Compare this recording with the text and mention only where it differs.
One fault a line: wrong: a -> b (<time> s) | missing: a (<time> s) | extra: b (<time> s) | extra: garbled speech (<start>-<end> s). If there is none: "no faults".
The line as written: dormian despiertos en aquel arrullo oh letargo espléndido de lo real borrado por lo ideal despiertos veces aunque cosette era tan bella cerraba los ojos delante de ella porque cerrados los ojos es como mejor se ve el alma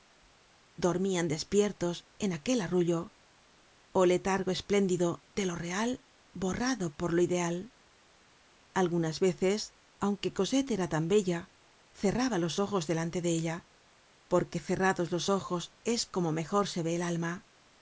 wrong: despiertos -> algunas (8.7 s)